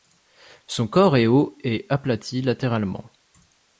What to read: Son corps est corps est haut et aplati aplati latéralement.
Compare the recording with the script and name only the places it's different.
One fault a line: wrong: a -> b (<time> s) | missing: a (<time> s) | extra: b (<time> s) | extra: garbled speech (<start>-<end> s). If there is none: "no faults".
missing: corps est (1.3 s)
missing: aplati (2.4 s)